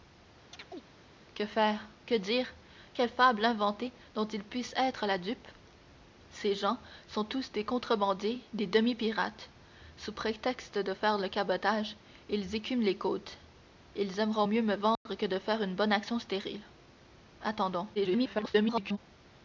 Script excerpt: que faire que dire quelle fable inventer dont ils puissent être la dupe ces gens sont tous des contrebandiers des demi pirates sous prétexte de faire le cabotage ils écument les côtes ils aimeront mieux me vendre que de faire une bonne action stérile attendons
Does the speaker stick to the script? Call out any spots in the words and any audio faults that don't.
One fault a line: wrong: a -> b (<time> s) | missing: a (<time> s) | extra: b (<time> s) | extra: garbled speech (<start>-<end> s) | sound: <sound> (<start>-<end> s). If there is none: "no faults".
sound: chirp (0.5-0.8 s)
sound: dropout (15.0-15.1 s)
extra: garbled speech (17.9-19.0 s)